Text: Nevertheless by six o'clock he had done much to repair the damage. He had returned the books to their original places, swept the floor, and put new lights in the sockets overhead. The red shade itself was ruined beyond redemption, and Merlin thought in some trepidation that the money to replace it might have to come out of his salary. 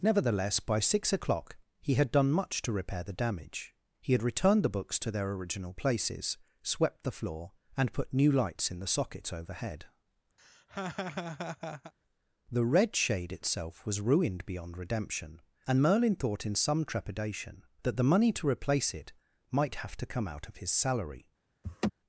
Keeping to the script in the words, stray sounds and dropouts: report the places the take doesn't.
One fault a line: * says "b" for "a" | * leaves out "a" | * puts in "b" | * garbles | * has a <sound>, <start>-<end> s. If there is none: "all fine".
* has a laugh, 10.4-11.9 s
* has a laugh, 21.6-21.9 s